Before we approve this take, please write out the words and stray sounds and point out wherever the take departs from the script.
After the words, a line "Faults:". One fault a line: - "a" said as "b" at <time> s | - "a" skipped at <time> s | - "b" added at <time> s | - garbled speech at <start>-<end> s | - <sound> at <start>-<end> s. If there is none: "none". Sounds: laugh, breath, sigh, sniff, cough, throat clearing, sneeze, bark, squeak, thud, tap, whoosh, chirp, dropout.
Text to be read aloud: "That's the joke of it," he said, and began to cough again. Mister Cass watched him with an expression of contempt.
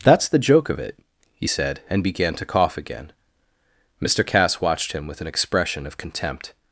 "That's the joke of it," he said, and began to cough again. Mister Cass watched him with an expression of contempt.
Faults:
none